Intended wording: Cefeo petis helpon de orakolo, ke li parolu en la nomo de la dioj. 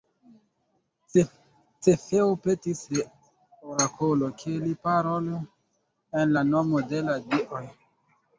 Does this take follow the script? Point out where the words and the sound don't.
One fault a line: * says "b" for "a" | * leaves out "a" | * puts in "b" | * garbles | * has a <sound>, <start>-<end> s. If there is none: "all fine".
* leaves out "helpon"